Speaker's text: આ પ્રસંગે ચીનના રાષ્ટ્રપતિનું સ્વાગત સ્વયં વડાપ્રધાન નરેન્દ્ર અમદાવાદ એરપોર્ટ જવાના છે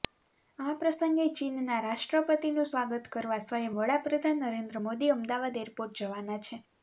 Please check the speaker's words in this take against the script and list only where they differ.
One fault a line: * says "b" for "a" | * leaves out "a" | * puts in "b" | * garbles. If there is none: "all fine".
* puts in "કરવા"
* puts in "મોદી"